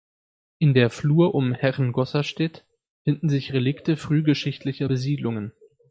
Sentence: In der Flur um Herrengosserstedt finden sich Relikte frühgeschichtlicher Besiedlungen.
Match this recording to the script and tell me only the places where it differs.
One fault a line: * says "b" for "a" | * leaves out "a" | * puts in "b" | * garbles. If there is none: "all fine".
all fine